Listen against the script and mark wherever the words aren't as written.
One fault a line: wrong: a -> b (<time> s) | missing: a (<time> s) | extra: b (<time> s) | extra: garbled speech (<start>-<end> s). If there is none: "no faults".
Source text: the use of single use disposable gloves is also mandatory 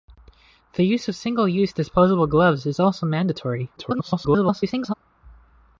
extra: garbled speech (3.8-4.9 s)